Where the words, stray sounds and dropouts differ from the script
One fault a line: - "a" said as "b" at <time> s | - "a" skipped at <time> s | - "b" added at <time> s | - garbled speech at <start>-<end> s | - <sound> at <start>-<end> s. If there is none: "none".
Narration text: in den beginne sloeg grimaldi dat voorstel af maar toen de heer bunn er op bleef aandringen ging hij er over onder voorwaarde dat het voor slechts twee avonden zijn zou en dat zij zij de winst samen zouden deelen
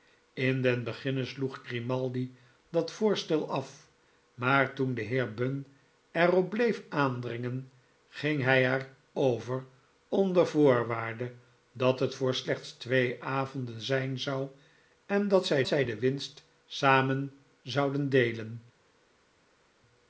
none